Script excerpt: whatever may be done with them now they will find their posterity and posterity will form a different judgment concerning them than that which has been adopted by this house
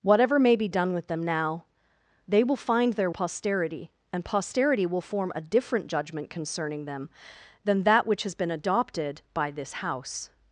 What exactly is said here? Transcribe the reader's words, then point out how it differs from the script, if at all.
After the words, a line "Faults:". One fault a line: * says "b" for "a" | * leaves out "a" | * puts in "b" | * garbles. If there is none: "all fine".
whatever may be done with them now they will find their posterity and posterity will form a different judgment concerning them than that which has been adopted by this house
Faults:
all fine